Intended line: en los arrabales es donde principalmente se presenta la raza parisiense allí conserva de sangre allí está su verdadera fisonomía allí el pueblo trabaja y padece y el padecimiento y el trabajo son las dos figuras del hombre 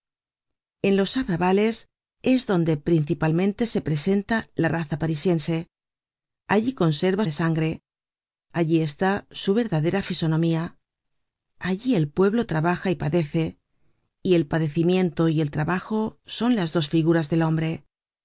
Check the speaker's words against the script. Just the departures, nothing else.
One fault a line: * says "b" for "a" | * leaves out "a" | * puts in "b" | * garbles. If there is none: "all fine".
all fine